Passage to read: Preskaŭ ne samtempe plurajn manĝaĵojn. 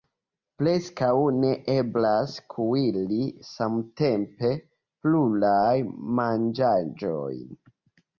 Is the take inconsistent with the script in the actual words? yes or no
yes